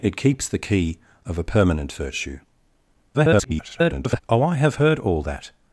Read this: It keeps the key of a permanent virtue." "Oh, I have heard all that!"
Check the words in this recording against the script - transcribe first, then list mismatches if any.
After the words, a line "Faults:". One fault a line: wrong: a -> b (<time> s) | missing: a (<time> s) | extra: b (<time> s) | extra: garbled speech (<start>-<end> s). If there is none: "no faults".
It keeps the key of a permanent virtue." [garbled] "Oh, I have heard all that!"
Faults:
extra: garbled speech (3.1-4.2 s)